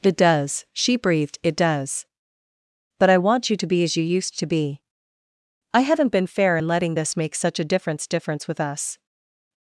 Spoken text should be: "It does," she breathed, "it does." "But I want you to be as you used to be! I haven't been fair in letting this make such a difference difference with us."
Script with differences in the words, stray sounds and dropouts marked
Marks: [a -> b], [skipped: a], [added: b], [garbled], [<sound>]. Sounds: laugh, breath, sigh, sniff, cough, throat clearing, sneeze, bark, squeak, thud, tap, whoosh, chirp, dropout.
"It does," she breathed, "it does." "But I want you to be as you used to be! I haven't been fair in letting this make such a difference difference with us."